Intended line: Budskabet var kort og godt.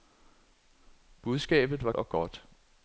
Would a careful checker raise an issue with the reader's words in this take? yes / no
yes